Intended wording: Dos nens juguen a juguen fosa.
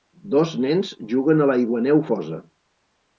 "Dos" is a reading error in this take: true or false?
false